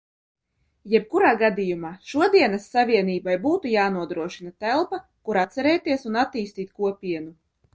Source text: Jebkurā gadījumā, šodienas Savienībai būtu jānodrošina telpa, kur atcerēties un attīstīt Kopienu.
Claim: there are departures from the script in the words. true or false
false